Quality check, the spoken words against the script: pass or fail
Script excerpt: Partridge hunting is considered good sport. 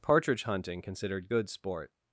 fail